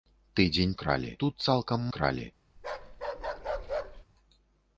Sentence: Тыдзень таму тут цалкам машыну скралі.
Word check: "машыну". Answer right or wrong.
wrong